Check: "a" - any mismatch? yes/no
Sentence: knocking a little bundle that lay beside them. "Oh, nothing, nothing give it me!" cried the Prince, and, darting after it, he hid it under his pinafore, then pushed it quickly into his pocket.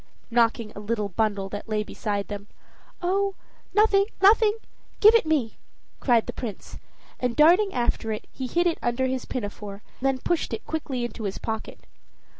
no